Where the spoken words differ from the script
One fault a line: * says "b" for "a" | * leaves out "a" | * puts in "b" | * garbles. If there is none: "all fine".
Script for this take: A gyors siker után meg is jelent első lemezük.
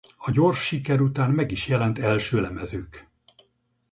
all fine